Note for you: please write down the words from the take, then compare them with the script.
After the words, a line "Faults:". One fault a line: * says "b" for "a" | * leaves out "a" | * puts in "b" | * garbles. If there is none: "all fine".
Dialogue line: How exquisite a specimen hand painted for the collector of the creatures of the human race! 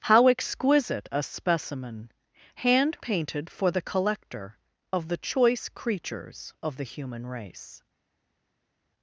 How exquisite a specimen hand painted for the collector of the choice creatures of the human race!
Faults:
* puts in "choice"